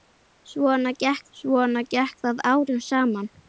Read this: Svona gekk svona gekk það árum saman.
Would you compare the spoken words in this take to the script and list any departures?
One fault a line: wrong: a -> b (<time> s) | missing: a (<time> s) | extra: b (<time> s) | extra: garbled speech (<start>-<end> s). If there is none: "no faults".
no faults